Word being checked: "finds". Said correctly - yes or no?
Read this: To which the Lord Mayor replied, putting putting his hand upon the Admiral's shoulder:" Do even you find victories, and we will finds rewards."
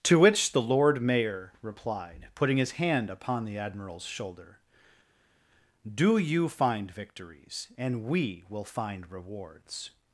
no